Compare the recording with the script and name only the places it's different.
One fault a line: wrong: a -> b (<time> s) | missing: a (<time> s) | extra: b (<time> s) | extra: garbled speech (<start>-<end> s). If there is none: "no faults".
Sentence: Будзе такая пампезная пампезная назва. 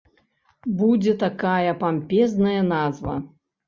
missing: пампезная (2.6 s)